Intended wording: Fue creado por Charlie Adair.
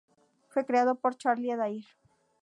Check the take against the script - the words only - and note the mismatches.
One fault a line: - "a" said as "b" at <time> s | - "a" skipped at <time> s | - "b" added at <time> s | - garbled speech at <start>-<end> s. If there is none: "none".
none